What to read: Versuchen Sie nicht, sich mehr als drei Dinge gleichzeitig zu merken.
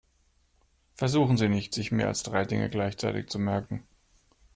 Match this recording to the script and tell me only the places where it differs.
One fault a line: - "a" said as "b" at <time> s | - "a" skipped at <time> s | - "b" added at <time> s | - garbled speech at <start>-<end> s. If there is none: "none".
none